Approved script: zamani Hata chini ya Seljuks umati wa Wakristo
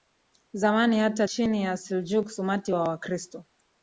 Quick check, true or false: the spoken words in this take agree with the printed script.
true